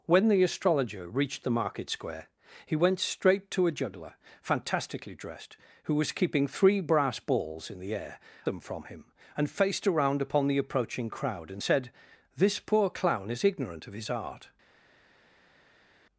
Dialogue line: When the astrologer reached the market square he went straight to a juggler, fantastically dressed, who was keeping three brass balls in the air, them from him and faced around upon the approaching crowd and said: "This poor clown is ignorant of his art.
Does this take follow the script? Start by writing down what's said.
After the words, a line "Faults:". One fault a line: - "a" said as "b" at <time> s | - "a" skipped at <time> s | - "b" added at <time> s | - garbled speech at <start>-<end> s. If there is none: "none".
When the astrologer reached the market square he went straight to a juggler, fantastically dressed, who was keeping three brass balls in the air, them from him and faced around upon the approaching crowd and said: "This poor clown is ignorant of his art.
Faults:
none